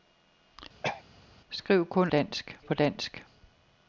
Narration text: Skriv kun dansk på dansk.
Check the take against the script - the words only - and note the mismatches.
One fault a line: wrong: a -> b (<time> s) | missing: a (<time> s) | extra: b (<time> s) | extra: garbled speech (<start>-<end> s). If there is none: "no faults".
no faults